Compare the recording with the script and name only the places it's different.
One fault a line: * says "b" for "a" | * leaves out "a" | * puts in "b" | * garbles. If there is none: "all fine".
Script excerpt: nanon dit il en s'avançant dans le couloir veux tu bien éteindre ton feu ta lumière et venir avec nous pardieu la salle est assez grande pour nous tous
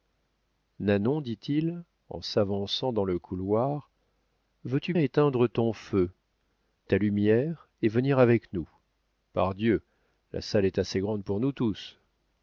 * leaves out "bien"